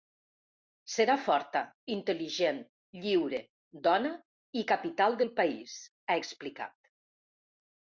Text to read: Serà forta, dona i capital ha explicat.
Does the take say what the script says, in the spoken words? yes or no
no